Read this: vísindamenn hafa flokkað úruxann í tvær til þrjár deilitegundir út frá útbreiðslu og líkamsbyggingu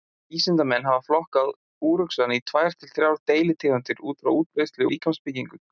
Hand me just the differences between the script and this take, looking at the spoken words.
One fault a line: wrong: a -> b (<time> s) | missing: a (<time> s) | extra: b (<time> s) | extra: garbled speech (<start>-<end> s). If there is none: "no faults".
missing: og (4.9 s)